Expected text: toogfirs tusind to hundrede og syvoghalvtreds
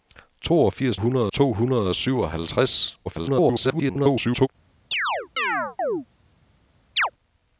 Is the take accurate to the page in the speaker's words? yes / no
no